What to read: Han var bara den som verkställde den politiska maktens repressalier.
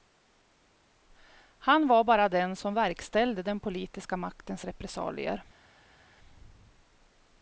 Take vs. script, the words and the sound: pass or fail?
pass